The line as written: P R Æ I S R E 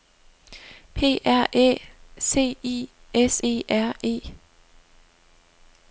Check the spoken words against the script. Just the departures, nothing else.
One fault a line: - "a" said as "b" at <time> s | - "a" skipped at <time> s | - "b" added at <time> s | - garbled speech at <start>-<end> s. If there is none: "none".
- "C" added at 2.2 s
- "E" added at 3.4 s